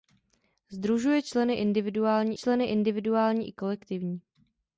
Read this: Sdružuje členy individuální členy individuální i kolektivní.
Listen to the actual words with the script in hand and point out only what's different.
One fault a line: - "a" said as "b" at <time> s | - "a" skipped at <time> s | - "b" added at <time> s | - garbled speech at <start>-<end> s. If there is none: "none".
none